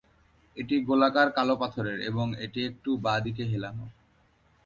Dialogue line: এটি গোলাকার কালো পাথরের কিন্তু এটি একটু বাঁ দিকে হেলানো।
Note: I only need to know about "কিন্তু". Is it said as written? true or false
false